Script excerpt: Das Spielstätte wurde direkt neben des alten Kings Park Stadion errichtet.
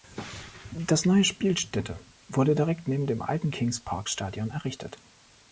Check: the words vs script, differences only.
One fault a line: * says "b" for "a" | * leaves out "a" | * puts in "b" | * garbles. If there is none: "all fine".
* puts in "neue"
* says "dem" for "des"